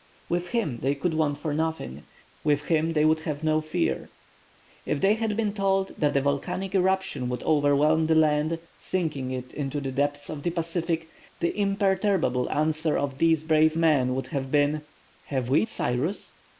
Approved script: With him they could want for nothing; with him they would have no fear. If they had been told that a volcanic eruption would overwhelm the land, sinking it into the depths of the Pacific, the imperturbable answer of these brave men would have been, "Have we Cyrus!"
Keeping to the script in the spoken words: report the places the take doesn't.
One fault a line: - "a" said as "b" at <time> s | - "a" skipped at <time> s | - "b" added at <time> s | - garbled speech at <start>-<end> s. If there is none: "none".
none